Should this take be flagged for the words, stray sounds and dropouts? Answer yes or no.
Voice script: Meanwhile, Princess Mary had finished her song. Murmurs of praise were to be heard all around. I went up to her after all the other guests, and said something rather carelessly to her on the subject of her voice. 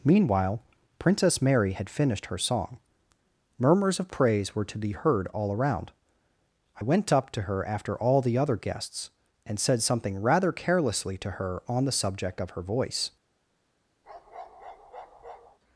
yes